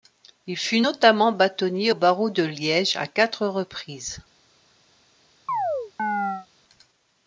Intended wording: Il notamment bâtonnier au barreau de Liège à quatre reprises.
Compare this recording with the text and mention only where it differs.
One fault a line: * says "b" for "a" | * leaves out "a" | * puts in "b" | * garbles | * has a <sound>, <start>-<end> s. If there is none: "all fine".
* puts in "fut"
* has a chirp, 5.5-6.5 s